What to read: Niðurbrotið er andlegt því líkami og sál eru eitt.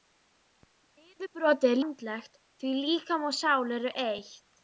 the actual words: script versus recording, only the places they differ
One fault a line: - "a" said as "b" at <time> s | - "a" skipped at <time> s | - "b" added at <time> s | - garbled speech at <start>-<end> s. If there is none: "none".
none